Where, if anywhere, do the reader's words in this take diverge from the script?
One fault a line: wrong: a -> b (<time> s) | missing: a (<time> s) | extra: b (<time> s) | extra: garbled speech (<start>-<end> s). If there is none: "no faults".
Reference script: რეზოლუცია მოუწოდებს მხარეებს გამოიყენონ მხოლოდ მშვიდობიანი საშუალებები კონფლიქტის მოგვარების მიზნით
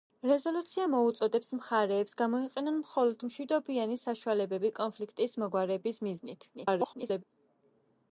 extra: garbled speech (6.5-7.2 s)